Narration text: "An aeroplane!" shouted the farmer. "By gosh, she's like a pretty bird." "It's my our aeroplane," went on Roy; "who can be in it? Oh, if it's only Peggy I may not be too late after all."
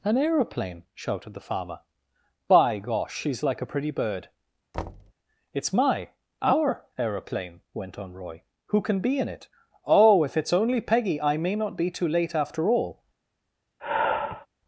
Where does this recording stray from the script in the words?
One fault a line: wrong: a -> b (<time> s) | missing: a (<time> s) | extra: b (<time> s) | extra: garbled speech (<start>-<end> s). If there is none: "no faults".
no faults